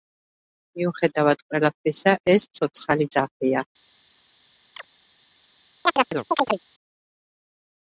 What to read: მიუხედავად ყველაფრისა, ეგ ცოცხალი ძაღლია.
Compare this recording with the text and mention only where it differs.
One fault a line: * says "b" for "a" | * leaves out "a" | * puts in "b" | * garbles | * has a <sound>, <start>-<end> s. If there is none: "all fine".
* says "ეს" for "ეგ"
* has a chirp, 4.7-4.9 s
* has a chirp, 5.9-6.6 s